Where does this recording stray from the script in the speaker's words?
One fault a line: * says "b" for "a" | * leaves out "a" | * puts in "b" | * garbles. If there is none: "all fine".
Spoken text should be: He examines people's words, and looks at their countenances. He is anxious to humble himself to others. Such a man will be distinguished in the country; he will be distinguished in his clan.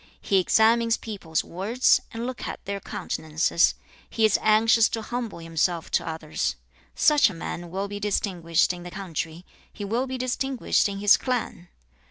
all fine